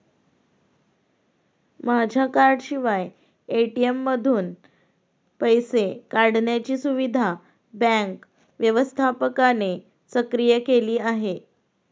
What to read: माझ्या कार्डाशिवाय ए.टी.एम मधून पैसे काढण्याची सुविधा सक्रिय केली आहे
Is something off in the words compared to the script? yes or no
yes